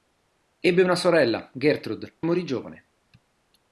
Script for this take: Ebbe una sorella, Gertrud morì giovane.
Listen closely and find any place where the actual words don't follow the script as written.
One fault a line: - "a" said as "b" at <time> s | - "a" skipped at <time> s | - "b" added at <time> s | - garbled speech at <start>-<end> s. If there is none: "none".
none